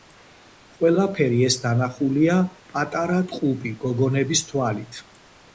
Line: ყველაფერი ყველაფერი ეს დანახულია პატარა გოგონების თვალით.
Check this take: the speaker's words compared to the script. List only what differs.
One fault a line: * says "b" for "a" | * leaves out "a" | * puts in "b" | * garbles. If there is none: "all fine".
* leaves out "ყველაფერი"
* puts in "ტყუპი"